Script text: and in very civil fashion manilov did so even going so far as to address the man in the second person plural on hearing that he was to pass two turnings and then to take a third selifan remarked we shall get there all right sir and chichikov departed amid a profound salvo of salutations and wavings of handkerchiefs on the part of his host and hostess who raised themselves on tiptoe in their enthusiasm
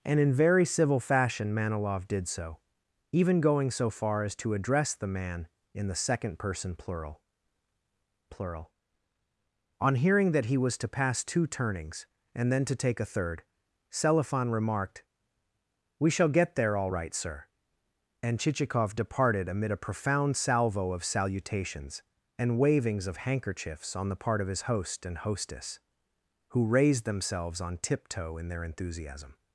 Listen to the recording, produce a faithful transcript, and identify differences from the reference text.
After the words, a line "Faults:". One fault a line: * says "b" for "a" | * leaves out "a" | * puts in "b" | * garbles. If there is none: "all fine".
and in very civil fashion manilov did so even going so far as to address the man in the second person plural plural on hearing that he was to pass two turnings and then to take a third selifan remarked we shall get there all right sir and chichikov departed amid a profound salvo of salutations and wavings of handkerchiefs on the part of his host and hostess who raised themselves on tiptoe in their enthusiasm
Faults:
* puts in "plural"